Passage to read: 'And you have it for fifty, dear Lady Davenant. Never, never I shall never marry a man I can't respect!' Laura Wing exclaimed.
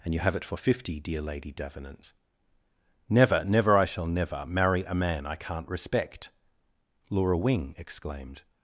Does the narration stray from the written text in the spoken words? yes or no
no